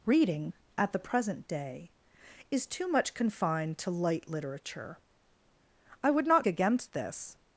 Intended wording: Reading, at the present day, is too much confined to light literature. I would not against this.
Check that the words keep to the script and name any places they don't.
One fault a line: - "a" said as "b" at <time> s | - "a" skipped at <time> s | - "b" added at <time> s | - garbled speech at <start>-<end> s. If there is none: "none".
none